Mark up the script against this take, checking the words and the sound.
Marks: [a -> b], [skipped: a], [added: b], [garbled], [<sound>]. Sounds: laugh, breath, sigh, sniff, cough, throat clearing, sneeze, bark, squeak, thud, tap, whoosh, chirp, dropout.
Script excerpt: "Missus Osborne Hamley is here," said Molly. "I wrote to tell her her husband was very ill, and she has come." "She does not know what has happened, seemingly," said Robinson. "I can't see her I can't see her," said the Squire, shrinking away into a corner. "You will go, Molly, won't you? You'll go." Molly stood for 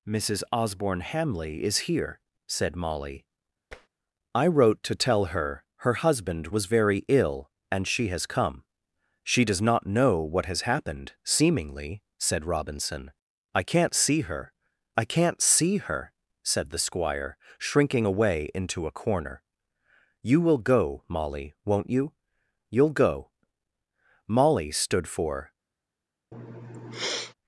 "Missus Osborne Hamley is here," said Molly. [tap] "I wrote to tell her her husband was very ill, and she has come." "She does not know what has happened, seemingly," said Robinson. "I can't see her I can't see her," said the Squire, shrinking away into a corner. "You will go, Molly, won't you? You'll go." Molly stood for [sniff]